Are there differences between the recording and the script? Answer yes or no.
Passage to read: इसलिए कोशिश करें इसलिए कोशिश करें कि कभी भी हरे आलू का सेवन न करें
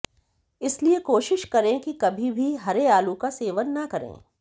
yes